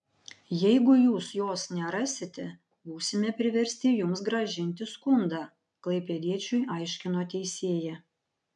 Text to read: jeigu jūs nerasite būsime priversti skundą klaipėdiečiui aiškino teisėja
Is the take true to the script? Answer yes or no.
no